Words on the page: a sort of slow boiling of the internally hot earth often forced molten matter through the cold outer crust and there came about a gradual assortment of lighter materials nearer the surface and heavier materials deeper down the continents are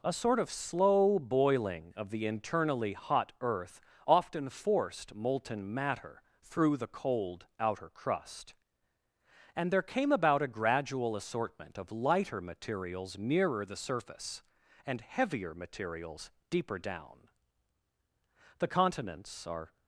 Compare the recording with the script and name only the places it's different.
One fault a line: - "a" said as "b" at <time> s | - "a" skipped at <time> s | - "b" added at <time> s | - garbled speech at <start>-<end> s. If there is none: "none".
none